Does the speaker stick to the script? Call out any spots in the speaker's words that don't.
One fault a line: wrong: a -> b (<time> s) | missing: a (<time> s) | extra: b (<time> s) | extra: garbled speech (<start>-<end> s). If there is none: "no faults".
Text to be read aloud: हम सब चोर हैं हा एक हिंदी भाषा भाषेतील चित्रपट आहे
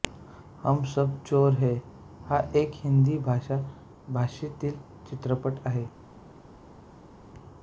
no faults